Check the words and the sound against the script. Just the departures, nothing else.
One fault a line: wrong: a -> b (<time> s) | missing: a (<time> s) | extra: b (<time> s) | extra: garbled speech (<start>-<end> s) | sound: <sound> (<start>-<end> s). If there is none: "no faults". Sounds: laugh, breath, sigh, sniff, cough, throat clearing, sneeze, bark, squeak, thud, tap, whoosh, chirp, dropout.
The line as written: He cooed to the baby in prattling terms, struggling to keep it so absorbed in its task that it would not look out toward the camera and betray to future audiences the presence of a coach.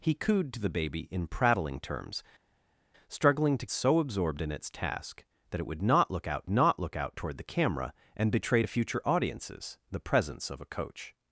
missing: keep it (3.7 s)
extra: not look out (6.5 s)